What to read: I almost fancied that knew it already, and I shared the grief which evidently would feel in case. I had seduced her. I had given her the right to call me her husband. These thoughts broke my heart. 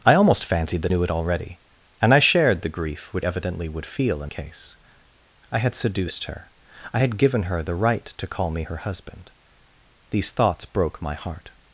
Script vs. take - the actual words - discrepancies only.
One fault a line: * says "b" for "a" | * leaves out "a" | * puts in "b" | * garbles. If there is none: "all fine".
all fine